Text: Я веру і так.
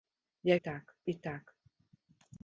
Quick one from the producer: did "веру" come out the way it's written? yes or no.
no